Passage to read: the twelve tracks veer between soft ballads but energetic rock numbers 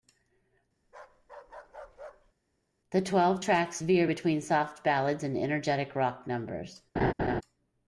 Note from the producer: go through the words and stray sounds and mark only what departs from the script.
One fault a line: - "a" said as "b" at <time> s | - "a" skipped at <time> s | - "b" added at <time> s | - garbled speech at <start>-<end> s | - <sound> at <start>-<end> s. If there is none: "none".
- bark at 0.8-2.3 s
- "but" said as "and" at 5.2 s
- laugh at 7.0-7.4 s